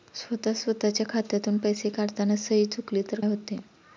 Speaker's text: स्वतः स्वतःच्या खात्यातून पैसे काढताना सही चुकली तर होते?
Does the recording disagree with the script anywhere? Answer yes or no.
no